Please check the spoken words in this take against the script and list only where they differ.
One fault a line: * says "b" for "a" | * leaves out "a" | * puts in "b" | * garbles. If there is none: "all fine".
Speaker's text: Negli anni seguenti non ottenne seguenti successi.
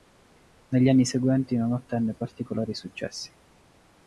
* says "particolari" for "seguenti"